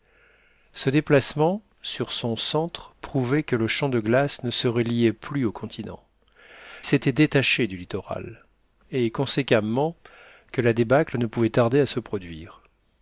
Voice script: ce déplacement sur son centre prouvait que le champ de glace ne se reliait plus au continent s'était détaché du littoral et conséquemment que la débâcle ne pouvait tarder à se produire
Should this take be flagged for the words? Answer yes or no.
no